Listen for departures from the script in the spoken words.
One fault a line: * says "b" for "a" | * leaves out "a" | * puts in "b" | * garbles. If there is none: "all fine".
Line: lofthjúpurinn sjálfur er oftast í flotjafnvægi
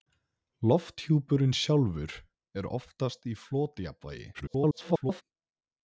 * garbles